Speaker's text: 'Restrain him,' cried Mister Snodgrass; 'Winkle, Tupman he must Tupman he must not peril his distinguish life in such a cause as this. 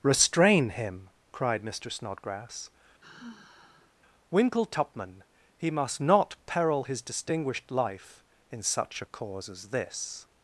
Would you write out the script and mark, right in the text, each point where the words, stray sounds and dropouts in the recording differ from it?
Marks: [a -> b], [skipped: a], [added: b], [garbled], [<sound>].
'Restrain him,' cried Mister Snodgrass; [sigh] 'Winkle, Tupman he must [skipped: Tupman he must] not peril his [distinguish -> distinguished] life in such a cause as this.